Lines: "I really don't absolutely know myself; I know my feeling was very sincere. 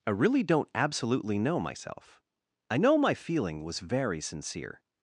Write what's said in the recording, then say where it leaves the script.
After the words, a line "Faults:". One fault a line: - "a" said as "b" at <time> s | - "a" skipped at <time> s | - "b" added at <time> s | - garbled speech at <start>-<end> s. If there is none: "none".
"I really don't absolutely know myself; I know my feeling was very sincere.
Faults:
none